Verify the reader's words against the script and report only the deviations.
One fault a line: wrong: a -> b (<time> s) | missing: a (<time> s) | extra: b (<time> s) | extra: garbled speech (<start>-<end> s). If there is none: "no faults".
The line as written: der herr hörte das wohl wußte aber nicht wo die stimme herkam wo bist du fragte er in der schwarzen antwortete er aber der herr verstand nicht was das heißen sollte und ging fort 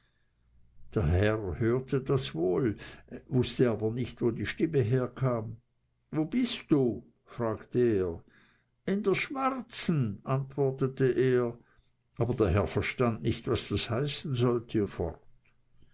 missing: und ging (14.9 s)